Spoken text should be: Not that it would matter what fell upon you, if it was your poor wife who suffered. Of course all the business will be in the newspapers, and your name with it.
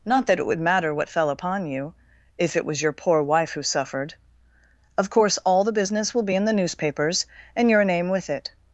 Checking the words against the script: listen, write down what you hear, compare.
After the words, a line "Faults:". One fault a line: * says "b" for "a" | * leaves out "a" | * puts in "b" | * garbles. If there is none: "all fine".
Not that it would matter what fell upon you, if it was your poor wife who suffered. Of course all the business will be in the newspapers, and your name with it.
Faults:
all fine